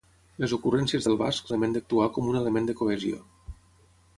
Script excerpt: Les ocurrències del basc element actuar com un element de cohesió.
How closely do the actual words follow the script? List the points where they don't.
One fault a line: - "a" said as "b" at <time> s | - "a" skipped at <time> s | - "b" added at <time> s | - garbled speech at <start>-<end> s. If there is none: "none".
none